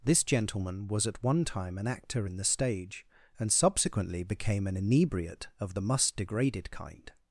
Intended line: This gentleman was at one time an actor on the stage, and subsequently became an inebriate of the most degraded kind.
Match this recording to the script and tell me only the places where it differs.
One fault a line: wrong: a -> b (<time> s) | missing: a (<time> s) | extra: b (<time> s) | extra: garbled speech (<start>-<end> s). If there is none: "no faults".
wrong: on -> in (2.2 s)
wrong: most -> must (5.8 s)